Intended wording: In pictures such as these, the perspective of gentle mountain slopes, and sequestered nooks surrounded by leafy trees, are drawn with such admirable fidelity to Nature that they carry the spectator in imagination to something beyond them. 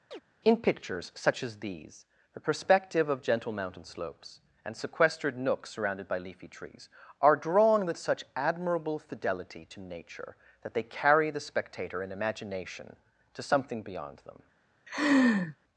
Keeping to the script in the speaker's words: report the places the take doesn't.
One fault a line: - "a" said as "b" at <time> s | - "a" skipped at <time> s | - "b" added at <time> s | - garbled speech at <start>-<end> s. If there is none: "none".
none